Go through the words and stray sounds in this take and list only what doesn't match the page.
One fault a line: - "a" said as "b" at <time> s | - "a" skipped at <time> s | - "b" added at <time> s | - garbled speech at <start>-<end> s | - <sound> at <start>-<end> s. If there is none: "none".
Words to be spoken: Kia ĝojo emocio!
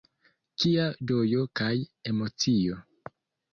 - "kaj" added at 1.6 s